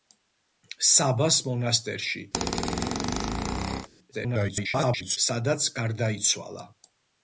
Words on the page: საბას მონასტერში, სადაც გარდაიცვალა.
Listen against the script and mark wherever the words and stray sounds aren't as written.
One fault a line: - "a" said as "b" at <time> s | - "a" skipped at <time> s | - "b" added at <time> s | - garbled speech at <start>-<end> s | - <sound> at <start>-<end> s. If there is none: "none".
- squeak at 2.3-3.9 s
- garbled speech at 4.1-5.2 s